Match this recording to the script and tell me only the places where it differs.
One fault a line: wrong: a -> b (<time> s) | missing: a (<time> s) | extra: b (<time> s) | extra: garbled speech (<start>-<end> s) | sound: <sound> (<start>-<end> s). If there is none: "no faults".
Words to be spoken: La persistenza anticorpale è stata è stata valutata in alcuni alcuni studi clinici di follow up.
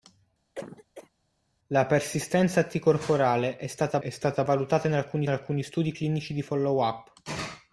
sound: cough (0.5-1.1 s)